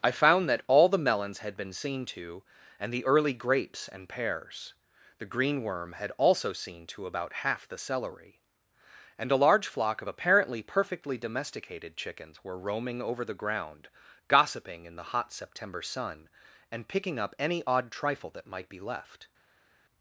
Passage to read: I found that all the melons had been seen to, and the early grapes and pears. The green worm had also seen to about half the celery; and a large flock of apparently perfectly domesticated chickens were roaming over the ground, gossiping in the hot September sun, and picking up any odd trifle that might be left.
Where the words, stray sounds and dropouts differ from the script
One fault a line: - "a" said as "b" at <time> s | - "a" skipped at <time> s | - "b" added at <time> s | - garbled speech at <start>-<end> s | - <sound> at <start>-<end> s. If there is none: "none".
none